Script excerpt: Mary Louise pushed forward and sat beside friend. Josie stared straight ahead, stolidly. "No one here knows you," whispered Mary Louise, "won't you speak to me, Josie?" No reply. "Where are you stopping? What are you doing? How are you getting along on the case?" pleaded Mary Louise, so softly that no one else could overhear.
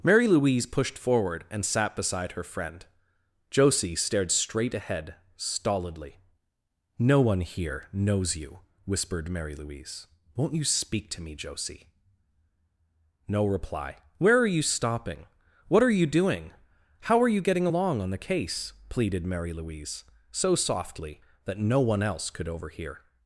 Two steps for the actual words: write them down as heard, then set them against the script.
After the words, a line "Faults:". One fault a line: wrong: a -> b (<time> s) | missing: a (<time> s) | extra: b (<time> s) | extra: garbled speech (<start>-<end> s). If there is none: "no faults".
Mary Louise pushed forward and sat beside her friend. Josie stared straight ahead, stolidly. "No one here knows you," whispered Mary Louise, "won't you speak to me, Josie?" No reply. "Where are you stopping? What are you doing? How are you getting along on the case?" pleaded Mary Louise, so softly that no one else could overhear.
Faults:
extra: her (2.3 s)